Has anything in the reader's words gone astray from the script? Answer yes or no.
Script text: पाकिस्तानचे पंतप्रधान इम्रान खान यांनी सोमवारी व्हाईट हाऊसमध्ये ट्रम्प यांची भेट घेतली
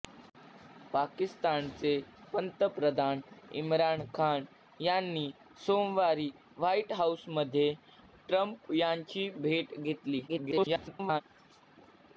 yes